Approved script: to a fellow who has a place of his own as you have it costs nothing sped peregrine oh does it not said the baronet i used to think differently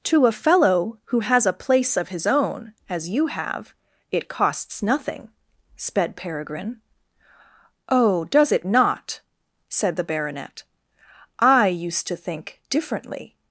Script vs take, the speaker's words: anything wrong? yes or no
no